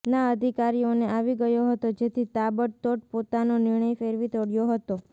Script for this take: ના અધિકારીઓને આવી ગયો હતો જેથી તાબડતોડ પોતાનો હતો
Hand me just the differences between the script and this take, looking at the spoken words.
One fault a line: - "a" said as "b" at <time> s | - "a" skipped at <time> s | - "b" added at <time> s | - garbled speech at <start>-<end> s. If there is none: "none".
- "નિર્ણય ફેરવી તોળ્યો" added at 3.6 s